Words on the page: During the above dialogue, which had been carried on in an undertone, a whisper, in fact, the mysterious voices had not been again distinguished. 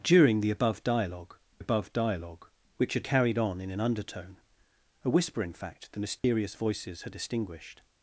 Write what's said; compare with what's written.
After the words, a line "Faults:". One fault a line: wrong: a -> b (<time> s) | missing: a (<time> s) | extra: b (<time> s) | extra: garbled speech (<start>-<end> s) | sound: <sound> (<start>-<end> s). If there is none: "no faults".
During the above dialogue above dialogue, which had carried on in an undertone, a whisper, in fact, the mysterious voices had distinguished.
Faults:
extra: above dialogue (1.6 s)
missing: been (3.0 s)
sound: dropout (6.2-6.2 s)
missing: not been again (7.1 s)